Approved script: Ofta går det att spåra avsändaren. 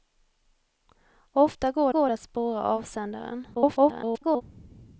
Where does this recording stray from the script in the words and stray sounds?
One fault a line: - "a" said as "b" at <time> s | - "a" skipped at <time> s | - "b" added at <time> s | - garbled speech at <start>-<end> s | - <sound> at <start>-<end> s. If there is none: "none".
- "går" added at 1.9 s
- garbled speech at 3.5-4.4 s